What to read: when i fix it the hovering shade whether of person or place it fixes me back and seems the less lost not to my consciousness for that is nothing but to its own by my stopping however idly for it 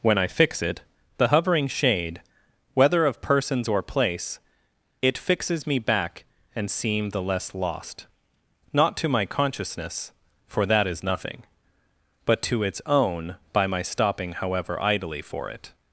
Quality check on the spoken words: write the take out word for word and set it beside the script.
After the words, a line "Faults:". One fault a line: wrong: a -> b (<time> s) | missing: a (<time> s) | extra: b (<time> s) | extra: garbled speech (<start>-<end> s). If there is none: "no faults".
when i fix it the hovering shade whether of persons or place it fixes me back and seem the less lost not to my consciousness for that is nothing but to its own by my stopping however idly for it
Faults:
wrong: person -> persons (3.2 s)
wrong: seems -> seem (6.7 s)